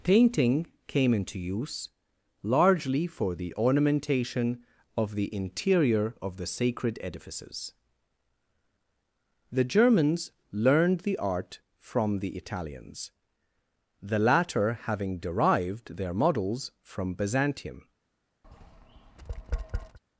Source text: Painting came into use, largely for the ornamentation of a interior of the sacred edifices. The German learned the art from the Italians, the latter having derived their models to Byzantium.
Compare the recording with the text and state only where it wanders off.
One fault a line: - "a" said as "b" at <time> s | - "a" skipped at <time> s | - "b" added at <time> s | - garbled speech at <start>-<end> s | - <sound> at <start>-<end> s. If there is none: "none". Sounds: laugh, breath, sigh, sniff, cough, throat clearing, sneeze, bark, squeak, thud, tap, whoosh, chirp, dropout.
- "a" said as "the" at 5.2 s
- "German" said as "Germans" at 9.7 s
- "to" said as "from" at 16.8 s
- tap at 18.4-20.0 s